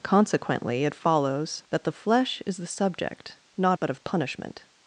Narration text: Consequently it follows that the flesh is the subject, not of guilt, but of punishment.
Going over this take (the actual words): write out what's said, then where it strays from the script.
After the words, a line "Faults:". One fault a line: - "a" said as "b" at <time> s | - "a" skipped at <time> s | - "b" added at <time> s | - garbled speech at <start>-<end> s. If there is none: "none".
Consequently it follows that the flesh is the subject, not but of punishment.
Faults:
- "of guilt" skipped at 3.8 s